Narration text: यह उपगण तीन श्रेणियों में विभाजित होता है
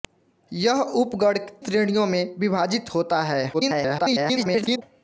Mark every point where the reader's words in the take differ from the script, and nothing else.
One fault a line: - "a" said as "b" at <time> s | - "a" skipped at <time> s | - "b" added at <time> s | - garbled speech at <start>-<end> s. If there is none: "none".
- "तीन" skipped at 1.4 s
- garbled speech at 3.5-4.8 s